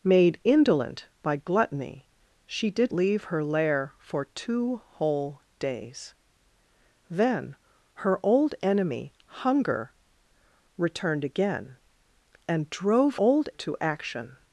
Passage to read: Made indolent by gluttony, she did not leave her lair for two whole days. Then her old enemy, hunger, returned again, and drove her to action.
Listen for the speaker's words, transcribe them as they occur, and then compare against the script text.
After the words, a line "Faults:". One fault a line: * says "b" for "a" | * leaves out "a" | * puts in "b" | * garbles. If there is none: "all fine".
Made indolent by gluttony, she did leave her lair for two whole days. Then her old enemy, hunger, returned again, and drove old to action.
Faults:
* leaves out "not"
* says "old" for "her"